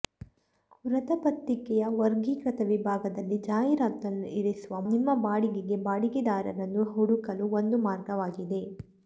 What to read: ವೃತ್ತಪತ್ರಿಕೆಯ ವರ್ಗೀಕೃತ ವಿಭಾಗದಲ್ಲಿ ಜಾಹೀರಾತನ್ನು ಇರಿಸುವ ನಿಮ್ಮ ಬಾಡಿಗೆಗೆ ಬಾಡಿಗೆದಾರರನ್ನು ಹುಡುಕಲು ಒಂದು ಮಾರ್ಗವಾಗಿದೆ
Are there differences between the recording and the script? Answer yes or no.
no